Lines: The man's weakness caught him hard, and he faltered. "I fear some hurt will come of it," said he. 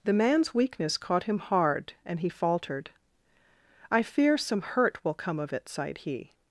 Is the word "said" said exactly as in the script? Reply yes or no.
no